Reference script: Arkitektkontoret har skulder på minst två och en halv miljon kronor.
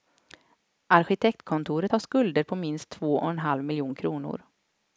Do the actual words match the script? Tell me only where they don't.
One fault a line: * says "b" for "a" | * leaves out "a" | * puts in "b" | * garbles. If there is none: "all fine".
all fine